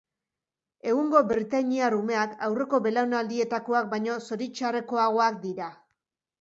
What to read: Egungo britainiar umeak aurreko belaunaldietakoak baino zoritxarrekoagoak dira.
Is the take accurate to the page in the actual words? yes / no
yes